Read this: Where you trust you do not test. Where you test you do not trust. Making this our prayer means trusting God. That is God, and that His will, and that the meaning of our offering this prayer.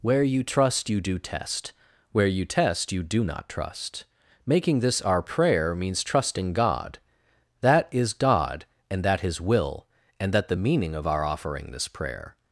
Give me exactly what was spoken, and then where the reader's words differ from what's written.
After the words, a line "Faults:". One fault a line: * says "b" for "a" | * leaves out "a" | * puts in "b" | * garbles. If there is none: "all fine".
Where you trust you do test. Where you test you do not trust. Making this our prayer means trusting God. That is God, and that His will, and that the meaning of our offering this prayer.
Faults:
* leaves out "not"